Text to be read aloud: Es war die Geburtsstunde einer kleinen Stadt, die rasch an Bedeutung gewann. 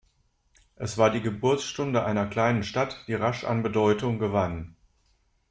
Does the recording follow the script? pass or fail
pass